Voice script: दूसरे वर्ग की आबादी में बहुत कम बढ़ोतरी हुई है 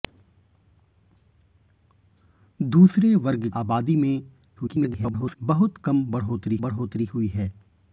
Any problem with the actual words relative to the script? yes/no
yes